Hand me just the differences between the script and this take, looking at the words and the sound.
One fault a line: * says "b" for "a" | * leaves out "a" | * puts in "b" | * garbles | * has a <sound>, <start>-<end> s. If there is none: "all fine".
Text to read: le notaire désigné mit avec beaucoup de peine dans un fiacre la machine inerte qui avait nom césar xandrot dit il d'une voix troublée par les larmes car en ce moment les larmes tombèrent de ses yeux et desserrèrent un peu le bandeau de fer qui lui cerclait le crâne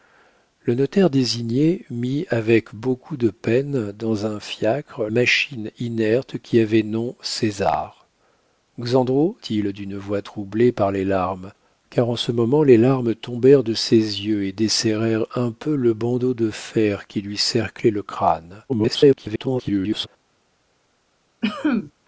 * leaves out "la"
* leaves out "dit"
* garbles
* has a cough, 21.4-21.9 s